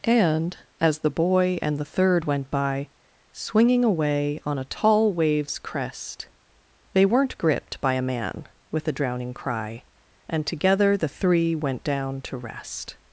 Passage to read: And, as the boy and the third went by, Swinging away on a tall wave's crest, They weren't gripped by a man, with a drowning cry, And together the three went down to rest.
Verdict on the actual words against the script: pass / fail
pass